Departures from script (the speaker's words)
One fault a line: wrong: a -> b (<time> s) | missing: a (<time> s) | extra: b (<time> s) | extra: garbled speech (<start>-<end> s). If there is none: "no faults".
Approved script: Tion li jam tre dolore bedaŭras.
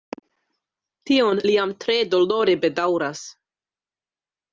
no faults